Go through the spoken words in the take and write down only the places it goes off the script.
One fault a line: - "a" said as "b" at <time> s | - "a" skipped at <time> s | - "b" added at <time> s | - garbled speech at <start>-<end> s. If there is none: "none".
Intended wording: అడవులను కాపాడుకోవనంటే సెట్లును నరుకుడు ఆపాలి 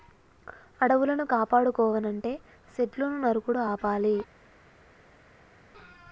none